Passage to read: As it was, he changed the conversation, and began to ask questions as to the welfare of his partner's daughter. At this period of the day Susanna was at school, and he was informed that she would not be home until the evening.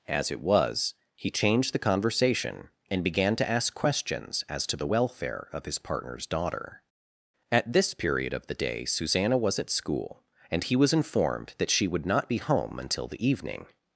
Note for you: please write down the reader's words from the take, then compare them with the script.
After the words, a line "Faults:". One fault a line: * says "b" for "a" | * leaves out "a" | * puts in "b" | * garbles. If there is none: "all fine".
As it was, he changed the conversation, and began to ask questions as to the welfare of his partner's daughter. At this period of the day Susanna was at school, and he was informed that she would not be home until the evening.
Faults:
all fine